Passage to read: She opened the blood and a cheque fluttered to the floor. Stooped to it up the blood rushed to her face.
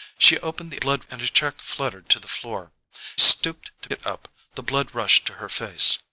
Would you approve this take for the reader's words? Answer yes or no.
yes